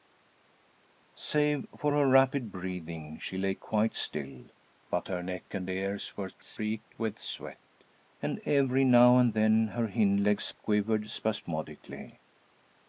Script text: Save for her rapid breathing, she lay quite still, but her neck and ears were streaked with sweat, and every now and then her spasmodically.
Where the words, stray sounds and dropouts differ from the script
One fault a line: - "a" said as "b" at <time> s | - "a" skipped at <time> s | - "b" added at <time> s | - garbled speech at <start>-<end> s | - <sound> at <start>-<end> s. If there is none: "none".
- "hind legs quivered" added at 9.9 s